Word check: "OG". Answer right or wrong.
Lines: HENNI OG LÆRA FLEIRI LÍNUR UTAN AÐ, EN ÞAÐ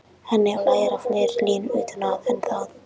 wrong